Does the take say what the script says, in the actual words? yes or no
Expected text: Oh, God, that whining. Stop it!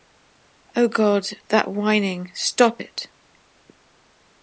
yes